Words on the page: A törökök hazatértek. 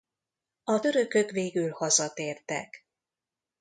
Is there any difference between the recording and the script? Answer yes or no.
yes